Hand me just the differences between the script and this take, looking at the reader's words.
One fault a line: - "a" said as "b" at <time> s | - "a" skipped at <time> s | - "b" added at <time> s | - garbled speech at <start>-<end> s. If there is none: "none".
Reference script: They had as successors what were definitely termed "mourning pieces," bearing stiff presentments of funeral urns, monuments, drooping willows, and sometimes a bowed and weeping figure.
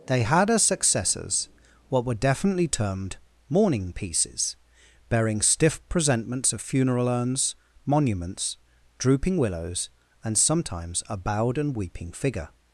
none